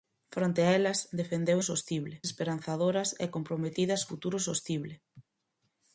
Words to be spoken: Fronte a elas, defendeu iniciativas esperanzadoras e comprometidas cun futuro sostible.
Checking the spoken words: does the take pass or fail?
fail